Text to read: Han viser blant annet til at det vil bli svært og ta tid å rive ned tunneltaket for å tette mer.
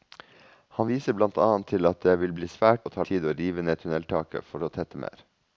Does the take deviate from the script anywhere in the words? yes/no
no